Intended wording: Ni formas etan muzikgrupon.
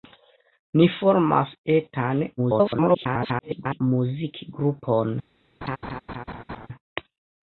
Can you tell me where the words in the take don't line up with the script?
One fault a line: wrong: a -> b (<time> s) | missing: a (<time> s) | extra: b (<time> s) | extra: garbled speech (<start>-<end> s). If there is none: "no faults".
extra: garbled speech (2.4-3.8 s)